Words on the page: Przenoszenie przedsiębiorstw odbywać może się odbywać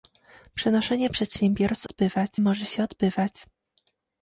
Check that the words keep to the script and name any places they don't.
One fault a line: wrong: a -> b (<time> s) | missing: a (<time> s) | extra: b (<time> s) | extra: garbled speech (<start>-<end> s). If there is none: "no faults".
no faults